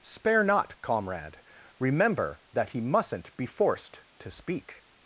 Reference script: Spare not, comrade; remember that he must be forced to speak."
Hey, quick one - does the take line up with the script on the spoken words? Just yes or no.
no